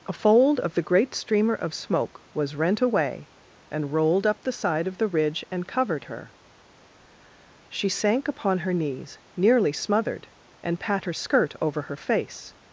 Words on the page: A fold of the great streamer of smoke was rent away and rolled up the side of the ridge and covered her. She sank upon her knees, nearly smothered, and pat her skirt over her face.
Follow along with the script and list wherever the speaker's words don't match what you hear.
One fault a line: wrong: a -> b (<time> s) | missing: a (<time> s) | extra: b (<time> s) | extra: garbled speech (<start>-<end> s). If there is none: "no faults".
no faults